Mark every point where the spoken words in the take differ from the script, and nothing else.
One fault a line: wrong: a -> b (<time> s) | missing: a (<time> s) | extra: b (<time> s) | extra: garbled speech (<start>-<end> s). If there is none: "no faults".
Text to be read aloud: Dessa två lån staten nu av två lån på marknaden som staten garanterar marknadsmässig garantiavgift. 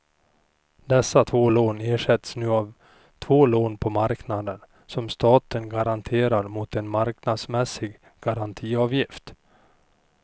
wrong: staten -> ersätts (1.8 s)
extra: mot en (6.5 s)